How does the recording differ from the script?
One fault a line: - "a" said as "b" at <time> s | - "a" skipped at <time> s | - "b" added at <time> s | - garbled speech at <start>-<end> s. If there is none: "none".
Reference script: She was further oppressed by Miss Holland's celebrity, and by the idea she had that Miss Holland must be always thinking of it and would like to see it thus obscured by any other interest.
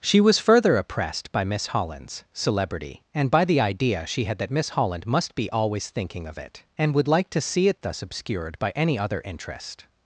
none